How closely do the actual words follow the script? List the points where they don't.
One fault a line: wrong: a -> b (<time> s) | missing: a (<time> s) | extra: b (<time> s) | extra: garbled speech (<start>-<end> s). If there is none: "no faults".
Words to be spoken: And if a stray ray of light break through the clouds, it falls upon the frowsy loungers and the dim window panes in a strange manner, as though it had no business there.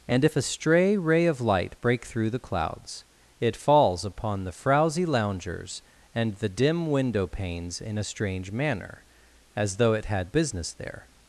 missing: no (10.3 s)